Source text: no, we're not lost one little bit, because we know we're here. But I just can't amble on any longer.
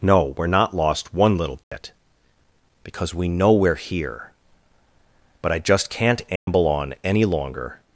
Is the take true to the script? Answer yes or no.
yes